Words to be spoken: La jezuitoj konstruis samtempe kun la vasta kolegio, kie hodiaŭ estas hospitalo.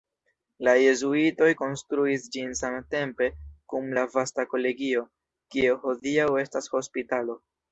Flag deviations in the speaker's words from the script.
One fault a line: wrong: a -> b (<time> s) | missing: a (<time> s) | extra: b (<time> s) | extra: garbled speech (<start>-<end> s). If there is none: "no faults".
extra: ĝin (2.4 s)